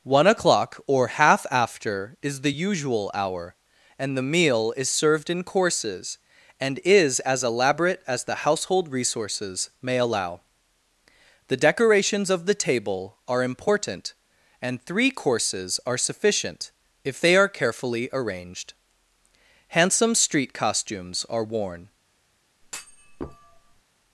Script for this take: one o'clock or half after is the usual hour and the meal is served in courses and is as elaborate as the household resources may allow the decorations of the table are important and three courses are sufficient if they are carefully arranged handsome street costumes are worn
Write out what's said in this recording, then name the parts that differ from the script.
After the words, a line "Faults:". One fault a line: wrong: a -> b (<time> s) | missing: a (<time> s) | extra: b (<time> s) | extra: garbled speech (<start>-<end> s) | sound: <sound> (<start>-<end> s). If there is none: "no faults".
one o'clock or half after is the usual hour and the meal is served in courses and is as elaborate as the household resources may allow the decorations of the table are important and three courses are sufficient if they are carefully arranged handsome street costumes are worn
Faults:
sound: thud (22.6-23.8 s)